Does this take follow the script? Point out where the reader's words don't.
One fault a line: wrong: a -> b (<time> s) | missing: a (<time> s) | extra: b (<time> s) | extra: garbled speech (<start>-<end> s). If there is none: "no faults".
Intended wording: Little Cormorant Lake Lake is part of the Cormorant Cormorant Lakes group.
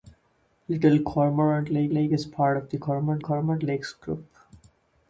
no faults